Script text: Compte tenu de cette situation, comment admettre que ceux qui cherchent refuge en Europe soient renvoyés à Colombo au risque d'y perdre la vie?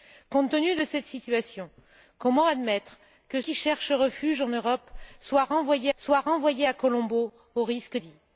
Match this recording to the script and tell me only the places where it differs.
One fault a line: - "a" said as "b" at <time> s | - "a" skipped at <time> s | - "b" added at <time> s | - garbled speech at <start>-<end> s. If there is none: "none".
- "ceux" skipped at 3.4 s
- "soient renvoyés" added at 6.0 s
- "d'y perdre la" skipped at 8.0 s